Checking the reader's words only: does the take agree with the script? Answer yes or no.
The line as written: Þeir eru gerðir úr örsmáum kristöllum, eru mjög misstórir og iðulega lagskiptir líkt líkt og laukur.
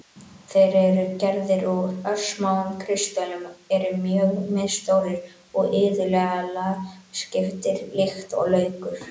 no